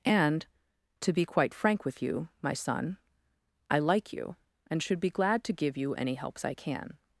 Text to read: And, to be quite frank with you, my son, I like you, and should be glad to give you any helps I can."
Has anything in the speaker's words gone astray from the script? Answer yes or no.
no